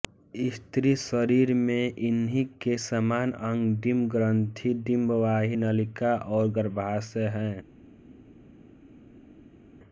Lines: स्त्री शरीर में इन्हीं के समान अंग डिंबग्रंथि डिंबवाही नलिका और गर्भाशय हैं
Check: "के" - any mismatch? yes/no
no